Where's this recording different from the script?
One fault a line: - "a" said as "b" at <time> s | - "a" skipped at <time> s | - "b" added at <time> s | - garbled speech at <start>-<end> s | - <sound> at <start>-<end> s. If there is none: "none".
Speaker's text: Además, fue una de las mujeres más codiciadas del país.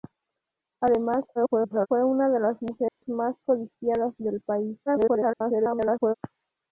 - garbled speech at 1.4-1.9 s
- dropout at 2.9-3.0 s
- garbled speech at 4.9-6.1 s